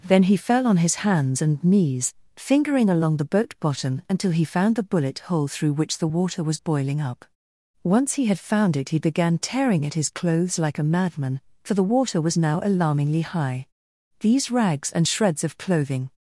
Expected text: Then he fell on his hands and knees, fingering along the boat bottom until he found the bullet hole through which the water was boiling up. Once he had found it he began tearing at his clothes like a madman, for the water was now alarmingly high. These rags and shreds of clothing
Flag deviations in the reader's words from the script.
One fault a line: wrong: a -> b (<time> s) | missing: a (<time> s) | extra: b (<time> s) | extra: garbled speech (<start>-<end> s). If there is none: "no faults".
no faults